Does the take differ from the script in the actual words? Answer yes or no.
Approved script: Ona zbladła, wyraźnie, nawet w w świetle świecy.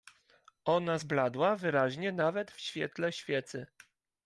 yes